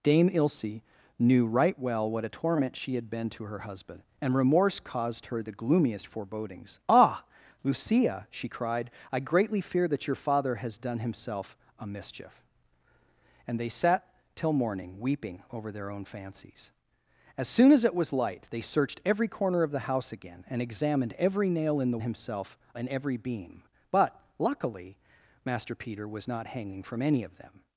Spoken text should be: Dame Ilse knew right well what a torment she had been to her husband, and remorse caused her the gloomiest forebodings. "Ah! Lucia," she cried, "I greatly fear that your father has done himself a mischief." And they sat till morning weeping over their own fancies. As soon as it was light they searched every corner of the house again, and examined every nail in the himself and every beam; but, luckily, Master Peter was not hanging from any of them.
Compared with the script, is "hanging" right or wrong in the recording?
right